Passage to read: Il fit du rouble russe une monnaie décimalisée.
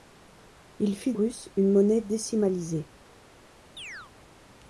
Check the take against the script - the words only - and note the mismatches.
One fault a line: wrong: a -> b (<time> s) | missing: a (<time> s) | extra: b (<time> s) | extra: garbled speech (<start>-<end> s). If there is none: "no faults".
missing: du rouble (1.1 s)